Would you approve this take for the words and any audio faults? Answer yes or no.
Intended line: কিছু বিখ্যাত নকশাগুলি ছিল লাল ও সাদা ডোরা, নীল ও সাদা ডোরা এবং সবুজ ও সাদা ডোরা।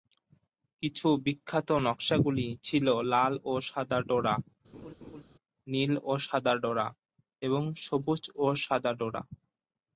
no